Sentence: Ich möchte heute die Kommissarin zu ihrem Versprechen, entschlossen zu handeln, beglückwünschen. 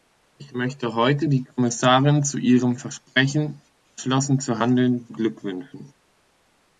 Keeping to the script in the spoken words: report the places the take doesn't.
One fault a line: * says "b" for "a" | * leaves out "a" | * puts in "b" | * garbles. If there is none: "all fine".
all fine